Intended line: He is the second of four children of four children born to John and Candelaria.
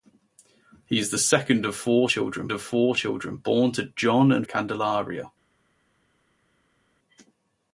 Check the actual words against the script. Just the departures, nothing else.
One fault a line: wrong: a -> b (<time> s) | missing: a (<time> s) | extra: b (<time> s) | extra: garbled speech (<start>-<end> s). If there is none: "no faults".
no faults